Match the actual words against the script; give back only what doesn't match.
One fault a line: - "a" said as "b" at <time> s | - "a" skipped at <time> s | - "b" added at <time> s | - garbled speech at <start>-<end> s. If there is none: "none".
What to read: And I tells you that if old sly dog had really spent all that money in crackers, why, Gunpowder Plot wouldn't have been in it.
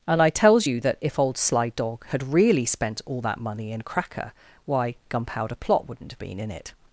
- "crackers" said as "cracker" at 3.8 s